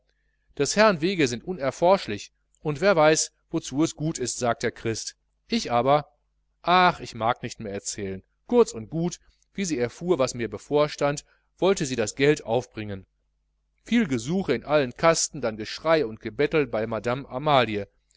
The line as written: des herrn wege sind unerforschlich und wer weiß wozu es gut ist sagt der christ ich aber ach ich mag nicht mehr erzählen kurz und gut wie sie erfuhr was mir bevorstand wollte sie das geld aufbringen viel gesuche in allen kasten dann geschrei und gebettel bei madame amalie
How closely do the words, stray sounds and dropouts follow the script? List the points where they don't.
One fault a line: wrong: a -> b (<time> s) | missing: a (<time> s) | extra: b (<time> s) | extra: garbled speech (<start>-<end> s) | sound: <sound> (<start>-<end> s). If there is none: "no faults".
no faults